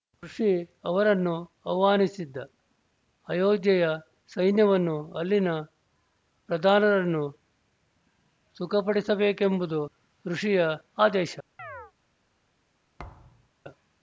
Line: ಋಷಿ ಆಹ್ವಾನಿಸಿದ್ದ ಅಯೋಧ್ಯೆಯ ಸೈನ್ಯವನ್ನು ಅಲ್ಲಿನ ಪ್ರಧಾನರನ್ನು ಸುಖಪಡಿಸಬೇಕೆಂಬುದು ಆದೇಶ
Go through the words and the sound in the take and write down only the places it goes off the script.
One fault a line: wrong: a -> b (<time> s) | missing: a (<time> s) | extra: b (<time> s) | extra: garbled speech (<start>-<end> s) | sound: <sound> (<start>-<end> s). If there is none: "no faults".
extra: ಅವರನ್ನು (0.8 s)
extra: ಋಷಿಯ (10.2 s)
sound: chirp (11.6-11.9 s)
sound: thud (13.0-13.5 s)